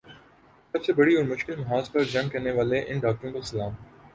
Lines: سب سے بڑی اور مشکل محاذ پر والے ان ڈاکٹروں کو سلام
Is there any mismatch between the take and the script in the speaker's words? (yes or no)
yes